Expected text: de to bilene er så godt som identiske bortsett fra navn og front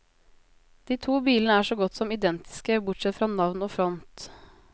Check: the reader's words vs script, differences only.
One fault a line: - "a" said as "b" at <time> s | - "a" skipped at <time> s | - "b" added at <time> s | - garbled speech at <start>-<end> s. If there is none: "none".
none